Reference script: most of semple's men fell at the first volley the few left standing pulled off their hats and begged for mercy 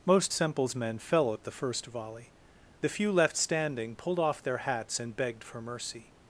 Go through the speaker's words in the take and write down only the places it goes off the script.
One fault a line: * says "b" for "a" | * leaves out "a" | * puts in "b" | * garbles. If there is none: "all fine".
* leaves out "of"